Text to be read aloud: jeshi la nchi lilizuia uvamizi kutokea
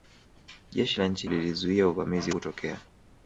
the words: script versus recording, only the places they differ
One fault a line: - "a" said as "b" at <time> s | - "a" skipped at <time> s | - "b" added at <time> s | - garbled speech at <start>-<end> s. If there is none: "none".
none